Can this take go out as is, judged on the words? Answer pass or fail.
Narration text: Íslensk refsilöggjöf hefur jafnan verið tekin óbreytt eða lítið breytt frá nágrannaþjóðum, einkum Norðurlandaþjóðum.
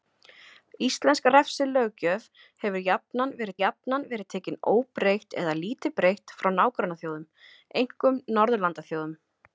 fail